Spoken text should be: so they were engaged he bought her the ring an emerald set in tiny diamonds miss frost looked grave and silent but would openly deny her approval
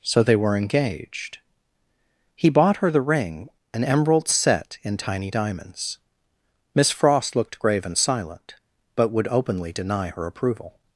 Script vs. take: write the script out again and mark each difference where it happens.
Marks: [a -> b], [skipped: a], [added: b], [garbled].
so they were engaged he bought her the ring an emerald set in tiny diamonds miss frost looked grave and silent but would openly deny her approval